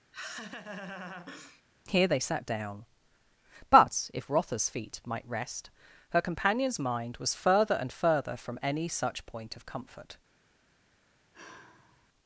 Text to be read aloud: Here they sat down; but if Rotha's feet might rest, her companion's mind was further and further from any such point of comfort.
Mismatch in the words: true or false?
false